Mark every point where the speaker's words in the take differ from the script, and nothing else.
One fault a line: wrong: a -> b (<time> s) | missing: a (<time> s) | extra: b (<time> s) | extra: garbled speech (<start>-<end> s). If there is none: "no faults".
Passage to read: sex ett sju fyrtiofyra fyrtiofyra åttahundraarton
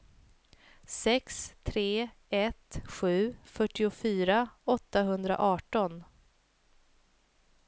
extra: tre (1.6 s)
missing: fyrtiofyra (4.5 s)